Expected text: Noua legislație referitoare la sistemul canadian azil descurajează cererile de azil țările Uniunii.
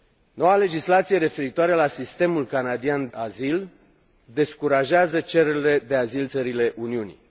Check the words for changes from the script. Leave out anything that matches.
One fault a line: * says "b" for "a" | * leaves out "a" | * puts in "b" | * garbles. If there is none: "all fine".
all fine